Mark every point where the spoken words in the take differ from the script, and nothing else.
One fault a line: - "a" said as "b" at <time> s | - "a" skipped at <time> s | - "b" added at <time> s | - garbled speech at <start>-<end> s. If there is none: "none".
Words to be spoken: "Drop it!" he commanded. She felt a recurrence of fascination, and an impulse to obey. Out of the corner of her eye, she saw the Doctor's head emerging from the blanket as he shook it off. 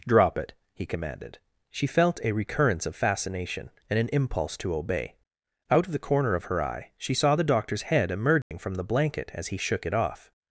none